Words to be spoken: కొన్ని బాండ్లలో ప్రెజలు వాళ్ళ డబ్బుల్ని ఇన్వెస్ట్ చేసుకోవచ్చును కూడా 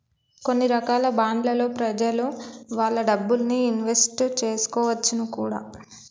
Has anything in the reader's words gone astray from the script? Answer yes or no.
yes